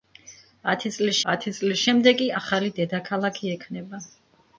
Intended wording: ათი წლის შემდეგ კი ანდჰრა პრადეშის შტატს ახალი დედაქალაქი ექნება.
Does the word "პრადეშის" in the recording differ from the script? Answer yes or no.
yes